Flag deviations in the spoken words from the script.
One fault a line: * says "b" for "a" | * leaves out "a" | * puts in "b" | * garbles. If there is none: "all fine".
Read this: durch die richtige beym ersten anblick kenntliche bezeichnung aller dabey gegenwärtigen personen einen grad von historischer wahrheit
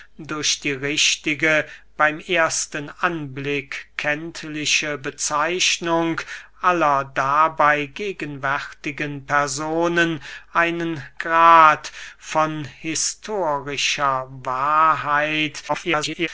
* garbles